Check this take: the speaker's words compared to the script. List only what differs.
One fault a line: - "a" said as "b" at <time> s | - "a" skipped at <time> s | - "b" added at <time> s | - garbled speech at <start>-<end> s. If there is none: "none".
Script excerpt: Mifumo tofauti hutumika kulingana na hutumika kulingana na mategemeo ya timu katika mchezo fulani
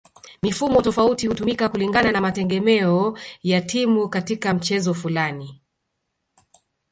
- "hutumika kulingana na" skipped at 2.2 s